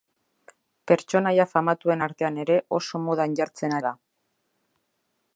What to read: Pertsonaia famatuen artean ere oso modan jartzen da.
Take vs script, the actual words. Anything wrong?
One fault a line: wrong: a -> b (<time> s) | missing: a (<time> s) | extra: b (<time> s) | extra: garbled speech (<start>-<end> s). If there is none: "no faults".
no faults